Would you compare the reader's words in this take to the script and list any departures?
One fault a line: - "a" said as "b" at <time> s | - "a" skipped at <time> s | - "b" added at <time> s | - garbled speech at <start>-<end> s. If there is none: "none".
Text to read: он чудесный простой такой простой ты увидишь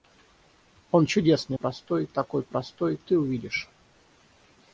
none